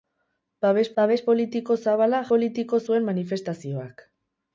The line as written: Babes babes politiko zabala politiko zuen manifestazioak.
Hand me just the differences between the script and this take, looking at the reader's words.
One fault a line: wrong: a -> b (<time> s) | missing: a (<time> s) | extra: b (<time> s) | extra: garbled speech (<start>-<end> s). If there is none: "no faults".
no faults